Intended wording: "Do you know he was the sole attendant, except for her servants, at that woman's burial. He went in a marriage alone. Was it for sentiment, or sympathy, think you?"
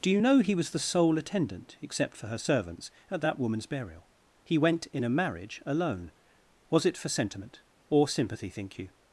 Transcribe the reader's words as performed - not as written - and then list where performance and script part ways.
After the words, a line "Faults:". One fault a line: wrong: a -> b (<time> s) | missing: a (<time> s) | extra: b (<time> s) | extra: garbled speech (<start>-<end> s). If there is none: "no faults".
"Do you know he was the sole attendant, except for her servants, at that woman's burial. He went in a marriage alone. Was it for sentiment, or sympathy, think you?"
Faults:
no faults